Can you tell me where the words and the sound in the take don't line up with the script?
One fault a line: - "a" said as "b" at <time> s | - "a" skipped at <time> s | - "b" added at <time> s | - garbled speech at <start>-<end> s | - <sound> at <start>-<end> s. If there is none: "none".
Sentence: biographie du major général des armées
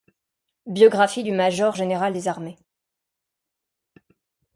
none